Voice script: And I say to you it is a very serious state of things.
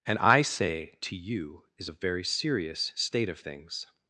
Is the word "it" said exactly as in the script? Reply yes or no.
no